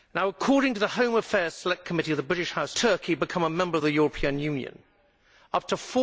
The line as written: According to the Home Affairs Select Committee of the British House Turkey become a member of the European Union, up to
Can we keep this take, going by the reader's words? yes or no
yes